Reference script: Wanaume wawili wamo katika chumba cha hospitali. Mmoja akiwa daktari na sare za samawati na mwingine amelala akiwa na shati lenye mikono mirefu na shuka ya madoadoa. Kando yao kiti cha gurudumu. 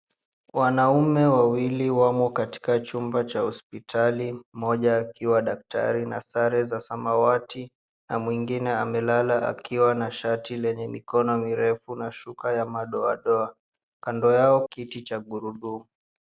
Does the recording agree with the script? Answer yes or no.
yes